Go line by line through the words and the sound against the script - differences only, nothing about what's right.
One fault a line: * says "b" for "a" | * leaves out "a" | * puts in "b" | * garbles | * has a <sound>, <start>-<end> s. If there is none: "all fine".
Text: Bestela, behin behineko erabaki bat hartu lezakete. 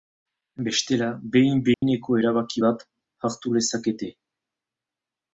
* has a dropout, 1.7-1.8 s